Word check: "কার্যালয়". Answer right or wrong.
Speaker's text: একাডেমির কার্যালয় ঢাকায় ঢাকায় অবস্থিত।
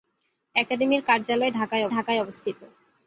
right